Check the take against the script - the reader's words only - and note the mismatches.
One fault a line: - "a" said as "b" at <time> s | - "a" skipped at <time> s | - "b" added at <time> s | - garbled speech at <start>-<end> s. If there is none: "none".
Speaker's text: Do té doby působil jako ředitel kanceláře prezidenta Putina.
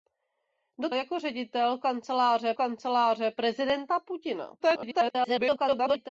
- "té doby působil" skipped at 0.9 s
- "kanceláře" added at 2.5 s
- garbled speech at 4.6-6.1 s